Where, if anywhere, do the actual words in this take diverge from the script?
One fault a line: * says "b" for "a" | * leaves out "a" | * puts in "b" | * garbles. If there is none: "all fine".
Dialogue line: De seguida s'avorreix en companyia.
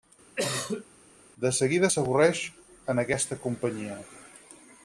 * puts in "aquesta"